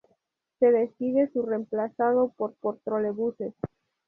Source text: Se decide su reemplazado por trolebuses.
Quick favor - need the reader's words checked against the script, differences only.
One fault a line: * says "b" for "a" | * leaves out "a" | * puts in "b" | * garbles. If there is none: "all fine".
* puts in "por"